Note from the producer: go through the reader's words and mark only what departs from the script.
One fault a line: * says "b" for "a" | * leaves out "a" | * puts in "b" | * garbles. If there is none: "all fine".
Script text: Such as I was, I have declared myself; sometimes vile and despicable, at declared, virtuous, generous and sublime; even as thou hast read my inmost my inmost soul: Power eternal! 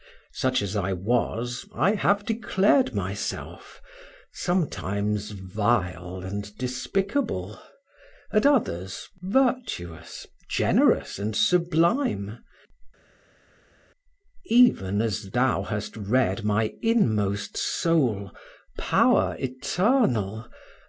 * says "others" for "declared"
* leaves out "my inmost"